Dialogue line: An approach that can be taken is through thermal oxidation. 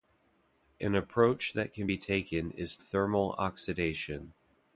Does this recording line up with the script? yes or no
no